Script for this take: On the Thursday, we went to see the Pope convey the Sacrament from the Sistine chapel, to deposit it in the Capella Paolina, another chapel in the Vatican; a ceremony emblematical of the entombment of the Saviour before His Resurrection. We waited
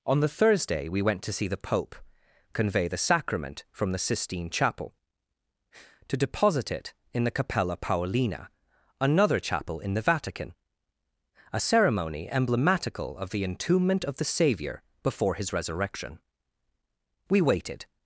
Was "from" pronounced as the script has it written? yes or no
yes